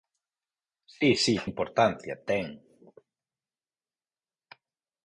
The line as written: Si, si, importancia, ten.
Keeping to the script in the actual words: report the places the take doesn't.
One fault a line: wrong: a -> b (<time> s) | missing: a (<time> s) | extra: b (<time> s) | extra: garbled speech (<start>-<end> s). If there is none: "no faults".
no faults